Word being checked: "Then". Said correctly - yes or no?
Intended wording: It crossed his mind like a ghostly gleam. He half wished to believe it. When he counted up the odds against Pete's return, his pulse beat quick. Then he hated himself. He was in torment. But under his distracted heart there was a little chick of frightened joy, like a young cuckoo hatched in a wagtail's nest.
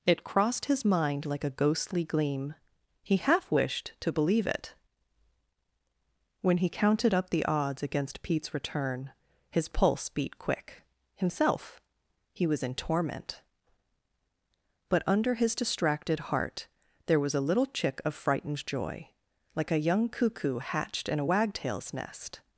no